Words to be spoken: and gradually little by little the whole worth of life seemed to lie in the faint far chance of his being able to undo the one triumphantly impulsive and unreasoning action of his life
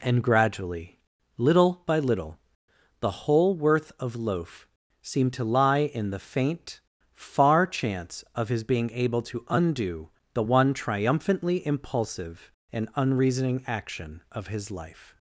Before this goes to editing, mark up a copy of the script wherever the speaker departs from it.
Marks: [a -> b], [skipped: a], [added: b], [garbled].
and gradually little by little the whole worth of [life -> loaf] seemed to lie in the faint far chance of his being able to undo the one triumphantly impulsive and unreasoning action of his life